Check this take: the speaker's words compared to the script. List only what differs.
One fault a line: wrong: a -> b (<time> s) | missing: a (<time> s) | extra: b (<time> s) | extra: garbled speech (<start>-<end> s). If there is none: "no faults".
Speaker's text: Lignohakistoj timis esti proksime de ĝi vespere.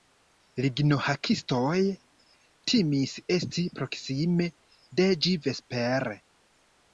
no faults